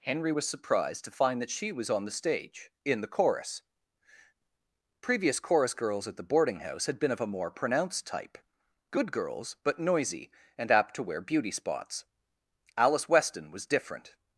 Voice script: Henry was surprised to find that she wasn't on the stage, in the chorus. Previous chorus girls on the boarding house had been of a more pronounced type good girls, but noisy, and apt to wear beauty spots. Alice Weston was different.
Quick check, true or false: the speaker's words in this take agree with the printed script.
false